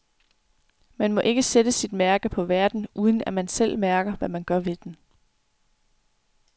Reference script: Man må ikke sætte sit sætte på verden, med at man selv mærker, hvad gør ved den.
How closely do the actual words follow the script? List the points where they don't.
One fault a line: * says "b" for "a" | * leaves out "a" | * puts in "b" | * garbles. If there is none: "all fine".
* says "mærke" for "sætte"
* says "uden" for "med"
* puts in "man"